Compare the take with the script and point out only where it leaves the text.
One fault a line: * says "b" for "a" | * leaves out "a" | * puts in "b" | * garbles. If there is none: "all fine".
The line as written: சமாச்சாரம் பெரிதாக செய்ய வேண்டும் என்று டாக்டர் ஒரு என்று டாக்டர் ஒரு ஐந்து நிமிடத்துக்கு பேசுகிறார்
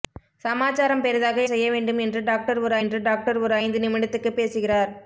all fine